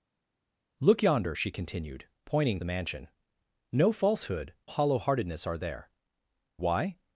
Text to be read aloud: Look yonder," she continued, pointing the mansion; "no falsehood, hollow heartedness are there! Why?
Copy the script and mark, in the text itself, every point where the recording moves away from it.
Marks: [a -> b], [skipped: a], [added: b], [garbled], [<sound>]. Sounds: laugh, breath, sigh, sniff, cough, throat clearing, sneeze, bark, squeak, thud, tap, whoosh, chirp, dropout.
Look yonder," she continued, pointing the mansion; "no falsehood, hollow heartedness are there! Why?